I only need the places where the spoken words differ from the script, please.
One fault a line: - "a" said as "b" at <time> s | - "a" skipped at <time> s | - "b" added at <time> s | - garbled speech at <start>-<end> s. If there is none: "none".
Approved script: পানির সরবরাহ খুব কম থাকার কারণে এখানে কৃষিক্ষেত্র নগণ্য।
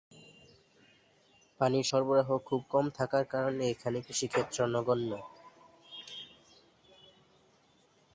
none